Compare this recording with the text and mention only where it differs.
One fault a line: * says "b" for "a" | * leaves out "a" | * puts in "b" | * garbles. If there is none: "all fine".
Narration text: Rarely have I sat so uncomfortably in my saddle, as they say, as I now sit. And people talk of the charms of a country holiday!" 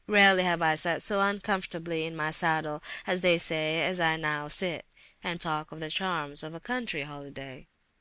* leaves out "people"